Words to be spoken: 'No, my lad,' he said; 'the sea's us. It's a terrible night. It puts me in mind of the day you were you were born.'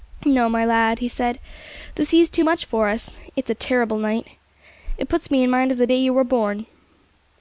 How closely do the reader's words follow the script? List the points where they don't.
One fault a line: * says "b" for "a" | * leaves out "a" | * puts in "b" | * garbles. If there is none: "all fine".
* puts in "too much for"
* leaves out "you were"